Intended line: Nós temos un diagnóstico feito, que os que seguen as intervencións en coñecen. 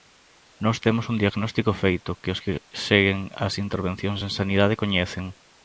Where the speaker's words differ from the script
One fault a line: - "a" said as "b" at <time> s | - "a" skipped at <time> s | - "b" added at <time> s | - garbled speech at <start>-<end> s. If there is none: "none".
- "sanidade" added at 4.4 s